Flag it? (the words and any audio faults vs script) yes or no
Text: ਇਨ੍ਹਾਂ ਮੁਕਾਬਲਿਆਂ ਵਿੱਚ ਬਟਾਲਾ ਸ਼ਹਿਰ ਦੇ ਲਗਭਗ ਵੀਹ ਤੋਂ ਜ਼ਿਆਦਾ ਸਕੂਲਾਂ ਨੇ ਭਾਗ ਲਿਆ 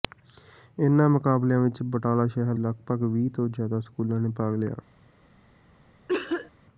yes